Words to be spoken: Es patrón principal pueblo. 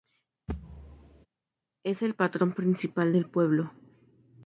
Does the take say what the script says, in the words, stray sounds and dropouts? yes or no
no